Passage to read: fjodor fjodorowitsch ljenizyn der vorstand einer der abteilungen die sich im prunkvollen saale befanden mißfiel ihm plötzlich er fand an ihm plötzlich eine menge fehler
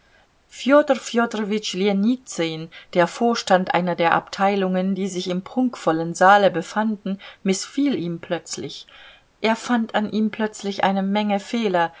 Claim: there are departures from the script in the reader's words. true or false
false